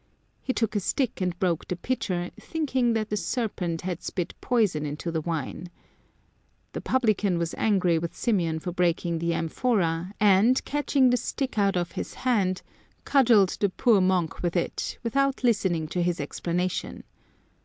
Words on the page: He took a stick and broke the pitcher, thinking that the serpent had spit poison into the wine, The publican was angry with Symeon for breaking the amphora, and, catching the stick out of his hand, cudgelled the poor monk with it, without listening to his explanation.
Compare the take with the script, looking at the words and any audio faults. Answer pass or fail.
pass